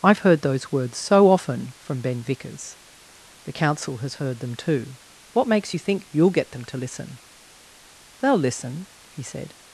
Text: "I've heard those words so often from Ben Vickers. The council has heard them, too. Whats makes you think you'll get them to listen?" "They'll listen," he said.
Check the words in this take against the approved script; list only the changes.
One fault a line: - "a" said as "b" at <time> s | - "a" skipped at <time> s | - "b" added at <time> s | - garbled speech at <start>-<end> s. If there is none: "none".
- "Whats" said as "What" at 5.3 s